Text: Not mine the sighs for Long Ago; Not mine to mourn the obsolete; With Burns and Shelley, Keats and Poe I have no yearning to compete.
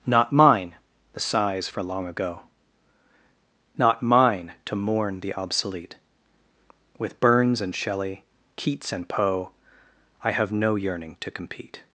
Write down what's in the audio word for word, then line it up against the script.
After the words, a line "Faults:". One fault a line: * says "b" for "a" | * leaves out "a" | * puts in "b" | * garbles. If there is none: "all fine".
Not mine the sighs for Long Ago; Not mine to mourn the obsolete; With Burns and Shelley, Keats and Poe I have no yearning to compete.
Faults:
all fine